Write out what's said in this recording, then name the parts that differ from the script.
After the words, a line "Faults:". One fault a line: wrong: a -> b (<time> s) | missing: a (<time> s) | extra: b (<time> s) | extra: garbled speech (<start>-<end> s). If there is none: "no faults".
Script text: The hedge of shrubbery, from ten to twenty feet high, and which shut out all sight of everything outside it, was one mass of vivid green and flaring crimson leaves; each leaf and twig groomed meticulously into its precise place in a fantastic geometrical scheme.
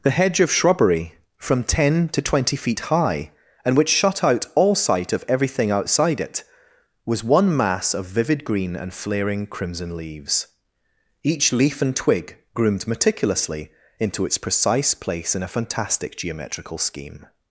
The hedge of shrubbery, from ten to twenty feet high, and which shut out all sight of everything outside it, was one mass of vivid green and flaring crimson leaves; each leaf and twig groomed meticulously into its precise place in a fantastic geometrical scheme.
Faults:
no faults